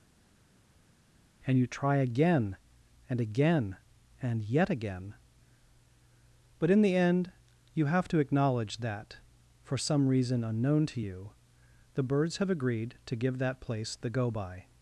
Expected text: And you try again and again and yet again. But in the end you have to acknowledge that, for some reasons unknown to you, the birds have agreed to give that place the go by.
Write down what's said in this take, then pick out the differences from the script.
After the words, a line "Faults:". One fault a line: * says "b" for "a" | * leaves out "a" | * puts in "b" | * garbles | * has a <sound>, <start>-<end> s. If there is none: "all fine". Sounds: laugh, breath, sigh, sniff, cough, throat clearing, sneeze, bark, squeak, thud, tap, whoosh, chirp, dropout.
And you try again and again and yet again. But in the end you have to acknowledge that, for some reason unknown to you, the birds have agreed to give that place the go by.
Faults:
* says "reason" for "reasons"